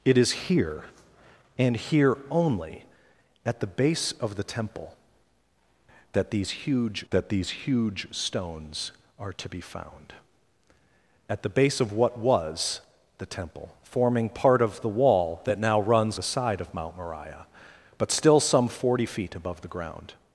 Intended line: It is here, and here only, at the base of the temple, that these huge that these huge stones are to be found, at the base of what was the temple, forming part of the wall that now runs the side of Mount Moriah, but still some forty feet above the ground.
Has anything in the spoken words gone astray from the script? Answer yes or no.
no